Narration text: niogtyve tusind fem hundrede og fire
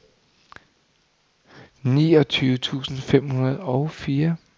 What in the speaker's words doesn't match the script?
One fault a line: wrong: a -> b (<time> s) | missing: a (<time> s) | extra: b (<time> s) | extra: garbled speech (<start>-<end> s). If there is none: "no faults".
no faults